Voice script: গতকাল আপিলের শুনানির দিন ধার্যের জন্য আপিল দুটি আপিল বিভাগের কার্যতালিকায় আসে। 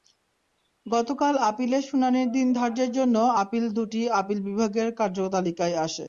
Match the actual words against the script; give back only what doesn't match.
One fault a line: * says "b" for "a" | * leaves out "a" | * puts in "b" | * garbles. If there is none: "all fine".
all fine